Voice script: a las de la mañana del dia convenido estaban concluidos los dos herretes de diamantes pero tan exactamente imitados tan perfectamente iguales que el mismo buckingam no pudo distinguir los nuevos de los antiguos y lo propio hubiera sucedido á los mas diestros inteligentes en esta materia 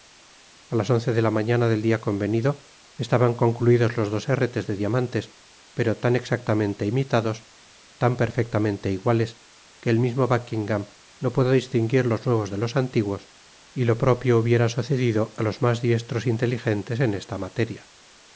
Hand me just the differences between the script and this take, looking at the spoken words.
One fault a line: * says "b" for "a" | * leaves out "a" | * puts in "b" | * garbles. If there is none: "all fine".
* puts in "once"